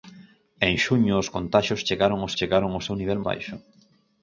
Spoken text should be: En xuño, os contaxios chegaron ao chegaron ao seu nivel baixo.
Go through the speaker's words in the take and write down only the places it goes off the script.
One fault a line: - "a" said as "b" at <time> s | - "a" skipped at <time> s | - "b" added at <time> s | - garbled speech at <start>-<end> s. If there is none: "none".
none